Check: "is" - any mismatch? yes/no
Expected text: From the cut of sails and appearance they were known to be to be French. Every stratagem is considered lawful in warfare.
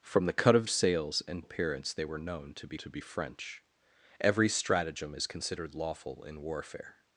no